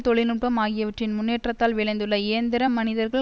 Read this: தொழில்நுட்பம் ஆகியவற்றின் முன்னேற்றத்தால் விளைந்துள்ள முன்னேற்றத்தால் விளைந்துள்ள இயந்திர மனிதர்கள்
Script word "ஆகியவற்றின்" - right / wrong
right